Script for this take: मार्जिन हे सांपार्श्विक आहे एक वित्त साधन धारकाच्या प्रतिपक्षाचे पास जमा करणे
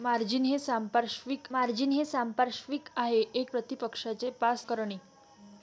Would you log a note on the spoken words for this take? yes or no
yes